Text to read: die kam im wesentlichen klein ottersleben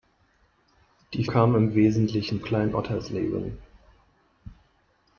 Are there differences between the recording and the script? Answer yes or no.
no